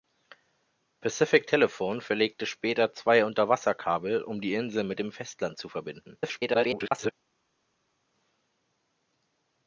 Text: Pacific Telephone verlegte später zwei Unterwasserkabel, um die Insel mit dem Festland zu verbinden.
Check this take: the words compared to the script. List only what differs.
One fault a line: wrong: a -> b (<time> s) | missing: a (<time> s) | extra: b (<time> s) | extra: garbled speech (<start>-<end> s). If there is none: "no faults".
extra: garbled speech (6.2-7.1 s)